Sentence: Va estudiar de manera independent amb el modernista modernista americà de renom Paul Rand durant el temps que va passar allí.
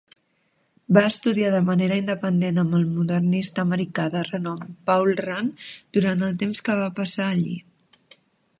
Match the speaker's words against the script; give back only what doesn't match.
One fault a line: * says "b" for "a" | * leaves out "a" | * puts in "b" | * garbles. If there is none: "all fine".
* leaves out "modernista"